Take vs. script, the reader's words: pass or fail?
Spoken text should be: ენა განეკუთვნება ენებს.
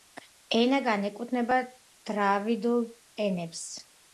fail